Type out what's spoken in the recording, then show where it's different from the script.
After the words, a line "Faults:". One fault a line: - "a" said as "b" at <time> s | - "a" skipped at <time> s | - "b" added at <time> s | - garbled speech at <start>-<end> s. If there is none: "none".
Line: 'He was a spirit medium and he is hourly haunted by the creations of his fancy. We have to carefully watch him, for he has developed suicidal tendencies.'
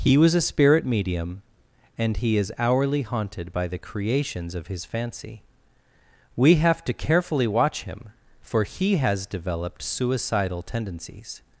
'He was a spirit medium and he is hourly haunted by the creations of his fancy. We have to carefully watch him, for he has developed suicidal tendencies.'
Faults:
none